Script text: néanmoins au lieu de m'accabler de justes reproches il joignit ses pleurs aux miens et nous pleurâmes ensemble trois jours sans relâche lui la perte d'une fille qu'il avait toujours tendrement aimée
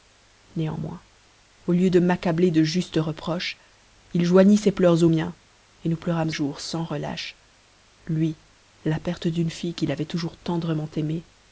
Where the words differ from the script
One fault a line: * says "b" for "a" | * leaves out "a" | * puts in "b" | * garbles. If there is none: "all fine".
* leaves out "ensemble trois"